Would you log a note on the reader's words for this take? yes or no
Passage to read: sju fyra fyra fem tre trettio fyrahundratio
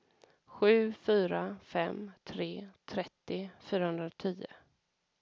yes